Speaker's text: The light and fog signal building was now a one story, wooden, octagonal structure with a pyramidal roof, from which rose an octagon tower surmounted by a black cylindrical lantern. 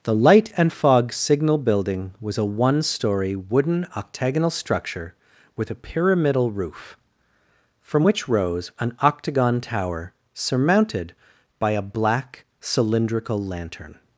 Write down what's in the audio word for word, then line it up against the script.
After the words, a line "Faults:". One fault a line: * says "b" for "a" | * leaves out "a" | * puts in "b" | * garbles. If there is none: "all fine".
The light and fog signal building was a one story, wooden, octagonal structure with a pyramidal roof, from which rose an octagon tower surmounted by a black cylindrical lantern.
Faults:
* leaves out "now"